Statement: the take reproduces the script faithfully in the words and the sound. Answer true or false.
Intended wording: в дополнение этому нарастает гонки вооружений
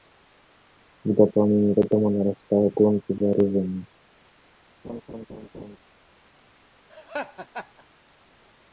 false